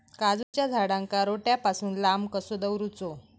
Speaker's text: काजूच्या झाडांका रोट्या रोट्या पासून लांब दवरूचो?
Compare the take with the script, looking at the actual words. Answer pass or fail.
fail